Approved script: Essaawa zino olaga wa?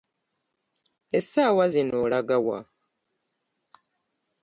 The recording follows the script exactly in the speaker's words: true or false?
true